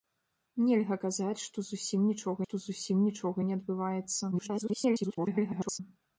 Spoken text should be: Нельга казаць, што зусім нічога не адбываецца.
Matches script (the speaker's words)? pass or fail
fail